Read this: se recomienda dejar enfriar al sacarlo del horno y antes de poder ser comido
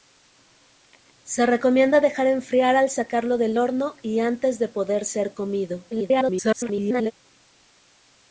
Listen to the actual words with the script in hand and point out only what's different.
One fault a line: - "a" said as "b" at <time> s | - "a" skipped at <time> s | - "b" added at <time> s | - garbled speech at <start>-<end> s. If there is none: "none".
- garbled speech at 5.9-7.1 s